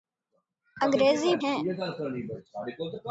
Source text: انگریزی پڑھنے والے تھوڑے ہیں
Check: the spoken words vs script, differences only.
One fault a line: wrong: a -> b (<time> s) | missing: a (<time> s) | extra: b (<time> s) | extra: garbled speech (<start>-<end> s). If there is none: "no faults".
missing: پڑھنے والے تھوڑے (1.3 s)